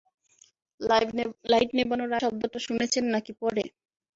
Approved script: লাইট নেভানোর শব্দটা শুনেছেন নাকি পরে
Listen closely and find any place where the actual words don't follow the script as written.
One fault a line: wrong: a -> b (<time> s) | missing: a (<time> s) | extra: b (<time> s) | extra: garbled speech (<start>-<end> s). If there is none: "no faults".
no faults